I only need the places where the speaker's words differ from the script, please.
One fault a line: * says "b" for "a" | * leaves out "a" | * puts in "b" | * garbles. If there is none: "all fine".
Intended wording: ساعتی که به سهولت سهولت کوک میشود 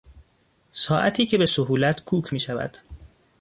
* leaves out "سهولت"